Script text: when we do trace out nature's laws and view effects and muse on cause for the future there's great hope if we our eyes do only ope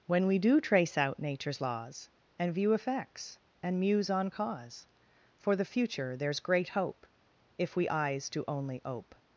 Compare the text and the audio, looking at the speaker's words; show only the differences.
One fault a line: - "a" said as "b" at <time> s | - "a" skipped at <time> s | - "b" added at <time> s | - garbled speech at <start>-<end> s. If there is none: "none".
- "our" skipped at 7.9 s